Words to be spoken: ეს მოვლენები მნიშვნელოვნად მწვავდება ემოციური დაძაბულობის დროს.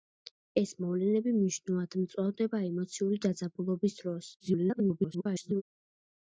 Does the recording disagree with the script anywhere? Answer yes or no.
yes